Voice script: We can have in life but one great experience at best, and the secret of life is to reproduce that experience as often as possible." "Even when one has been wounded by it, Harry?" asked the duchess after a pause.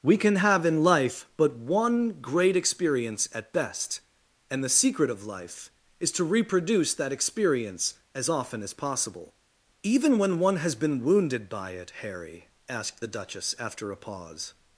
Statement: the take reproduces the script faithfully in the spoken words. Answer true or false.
true